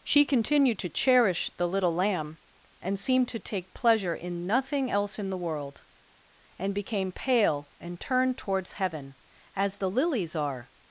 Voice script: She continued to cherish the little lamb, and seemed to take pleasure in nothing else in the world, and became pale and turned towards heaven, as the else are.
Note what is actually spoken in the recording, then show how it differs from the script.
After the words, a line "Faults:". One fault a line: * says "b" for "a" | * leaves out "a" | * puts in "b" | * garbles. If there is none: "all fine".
She continued to cherish the little lamb, and seemed to take pleasure in nothing else in the world, and became pale and turned towards heaven, as the lilies are.
Faults:
* says "lilies" for "else"